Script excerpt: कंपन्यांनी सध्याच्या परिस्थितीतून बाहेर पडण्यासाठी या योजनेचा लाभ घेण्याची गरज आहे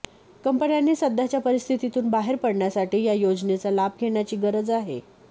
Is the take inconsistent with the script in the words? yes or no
no